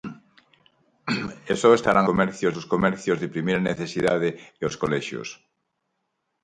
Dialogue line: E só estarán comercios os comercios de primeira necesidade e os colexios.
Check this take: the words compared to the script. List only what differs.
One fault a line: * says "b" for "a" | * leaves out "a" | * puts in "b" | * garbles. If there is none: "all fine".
all fine